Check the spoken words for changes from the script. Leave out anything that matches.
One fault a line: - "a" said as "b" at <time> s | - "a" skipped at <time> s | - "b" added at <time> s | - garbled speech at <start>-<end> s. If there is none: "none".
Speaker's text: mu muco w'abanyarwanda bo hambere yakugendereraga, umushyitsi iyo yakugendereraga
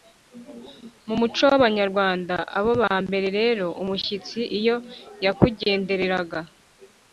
- "yakugendereraga" said as "rero" at 3.4 s